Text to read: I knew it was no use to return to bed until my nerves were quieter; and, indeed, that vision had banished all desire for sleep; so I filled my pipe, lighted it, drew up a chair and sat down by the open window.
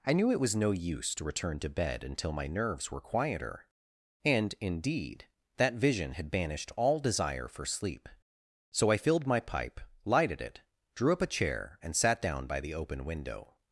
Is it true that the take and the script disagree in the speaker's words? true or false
false